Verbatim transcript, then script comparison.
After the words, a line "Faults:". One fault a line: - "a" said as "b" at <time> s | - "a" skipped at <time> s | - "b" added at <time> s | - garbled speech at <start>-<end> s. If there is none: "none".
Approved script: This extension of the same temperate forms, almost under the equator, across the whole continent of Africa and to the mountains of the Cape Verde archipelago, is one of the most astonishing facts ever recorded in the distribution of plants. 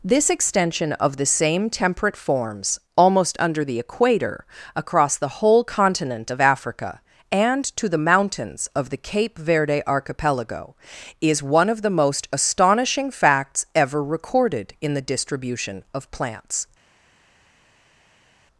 This extension of the same temperate forms, almost under the equator, across the whole continent of Africa and to the mountains of the Cape Verde archipelago, is one of the most astonishing facts ever recorded in the distribution of plants.
Faults:
none